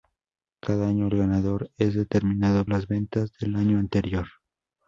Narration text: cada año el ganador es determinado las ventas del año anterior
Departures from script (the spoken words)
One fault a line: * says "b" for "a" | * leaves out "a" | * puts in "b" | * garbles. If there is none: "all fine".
all fine